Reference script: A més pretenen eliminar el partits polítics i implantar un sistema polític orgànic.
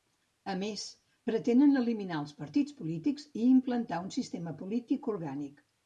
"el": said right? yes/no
no